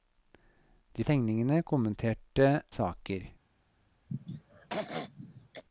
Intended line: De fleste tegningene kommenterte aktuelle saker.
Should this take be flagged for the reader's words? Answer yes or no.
yes